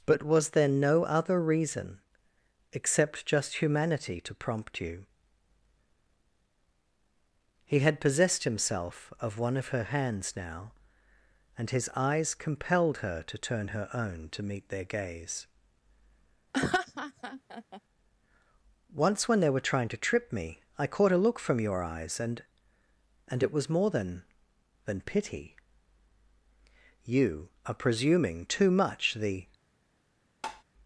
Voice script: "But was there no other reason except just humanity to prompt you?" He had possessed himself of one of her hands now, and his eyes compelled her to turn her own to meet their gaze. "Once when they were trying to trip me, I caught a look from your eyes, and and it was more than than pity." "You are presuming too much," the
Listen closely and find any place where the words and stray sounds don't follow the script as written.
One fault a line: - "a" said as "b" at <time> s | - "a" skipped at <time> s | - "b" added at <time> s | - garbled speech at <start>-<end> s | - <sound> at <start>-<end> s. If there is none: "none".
- laugh at 16.5-17.8 s
- tap at 30.4-30.6 s